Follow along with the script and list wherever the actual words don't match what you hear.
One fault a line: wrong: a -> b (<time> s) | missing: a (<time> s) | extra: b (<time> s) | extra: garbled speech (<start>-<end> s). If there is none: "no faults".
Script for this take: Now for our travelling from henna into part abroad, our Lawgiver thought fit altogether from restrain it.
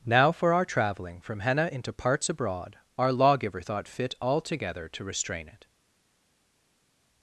wrong: part -> parts (1.9 s)
wrong: from -> to (4.9 s)